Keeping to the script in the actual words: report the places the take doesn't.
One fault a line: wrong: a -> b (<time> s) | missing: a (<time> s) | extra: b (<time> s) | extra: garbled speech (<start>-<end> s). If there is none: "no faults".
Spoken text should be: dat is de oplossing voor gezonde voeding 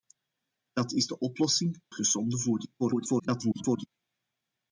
missing: voor (1.8 s)
extra: garbled speech (2.8-3.9 s)